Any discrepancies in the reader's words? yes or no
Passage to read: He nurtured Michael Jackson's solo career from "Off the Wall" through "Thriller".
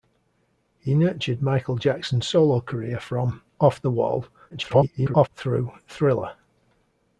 yes